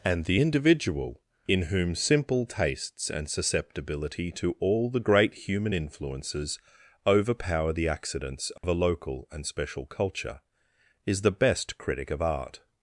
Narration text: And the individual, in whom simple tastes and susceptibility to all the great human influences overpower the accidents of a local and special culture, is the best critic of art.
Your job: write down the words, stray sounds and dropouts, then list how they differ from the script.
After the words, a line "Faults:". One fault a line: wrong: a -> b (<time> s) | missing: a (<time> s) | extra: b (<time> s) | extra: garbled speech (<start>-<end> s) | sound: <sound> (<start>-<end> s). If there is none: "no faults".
And the individual, in whom simple tastes and susceptibility to all the great human influences overpower the accidents of a local and special culture, is the best critic of art.
Faults:
sound: dropout (8.6-8.6 s)